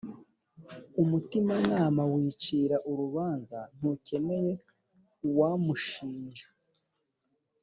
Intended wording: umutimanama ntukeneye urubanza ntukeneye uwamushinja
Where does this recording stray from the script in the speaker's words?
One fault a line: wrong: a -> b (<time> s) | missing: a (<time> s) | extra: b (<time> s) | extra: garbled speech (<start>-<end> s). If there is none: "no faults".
wrong: ntukeneye -> wicira (2.1 s)